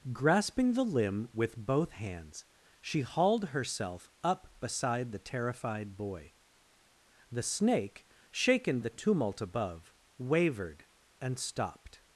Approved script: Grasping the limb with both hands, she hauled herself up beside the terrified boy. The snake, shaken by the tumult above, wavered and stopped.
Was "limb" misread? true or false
false